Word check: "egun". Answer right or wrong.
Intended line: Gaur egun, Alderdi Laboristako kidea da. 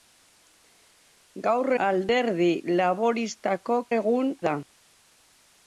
wrong